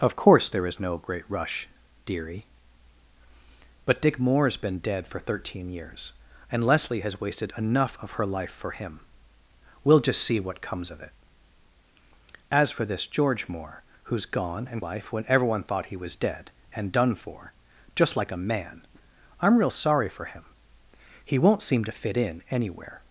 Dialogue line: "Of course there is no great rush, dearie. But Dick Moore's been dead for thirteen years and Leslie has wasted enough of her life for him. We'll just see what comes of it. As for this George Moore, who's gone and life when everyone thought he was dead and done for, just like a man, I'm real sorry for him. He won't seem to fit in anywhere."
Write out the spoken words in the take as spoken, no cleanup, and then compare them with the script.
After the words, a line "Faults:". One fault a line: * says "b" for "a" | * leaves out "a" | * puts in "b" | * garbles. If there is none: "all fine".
"Of course there is no great rush, dearie. But Dick Moore's been dead for thirteen years and Leslie has wasted enough of her life for him. We'll just see what comes of it. As for this George Moore, who's gone and life when everyone thought he was dead and done for, just like a man, I'm real sorry for him. He won't seem to fit in anywhere."
Faults:
all fine